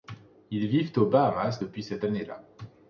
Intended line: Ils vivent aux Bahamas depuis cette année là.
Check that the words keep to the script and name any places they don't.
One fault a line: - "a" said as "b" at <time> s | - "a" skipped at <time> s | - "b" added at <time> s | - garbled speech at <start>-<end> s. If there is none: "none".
none